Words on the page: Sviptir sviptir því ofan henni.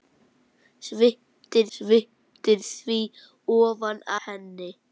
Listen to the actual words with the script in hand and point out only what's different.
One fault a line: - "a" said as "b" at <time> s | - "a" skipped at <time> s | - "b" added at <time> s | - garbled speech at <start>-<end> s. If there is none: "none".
none